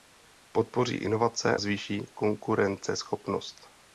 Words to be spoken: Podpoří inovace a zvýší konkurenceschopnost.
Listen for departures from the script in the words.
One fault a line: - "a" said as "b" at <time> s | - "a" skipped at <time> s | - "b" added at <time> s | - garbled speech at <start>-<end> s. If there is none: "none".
- "a" skipped at 1.6 s